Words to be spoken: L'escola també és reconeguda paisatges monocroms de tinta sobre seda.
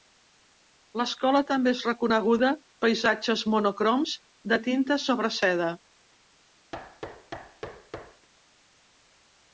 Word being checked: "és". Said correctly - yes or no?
yes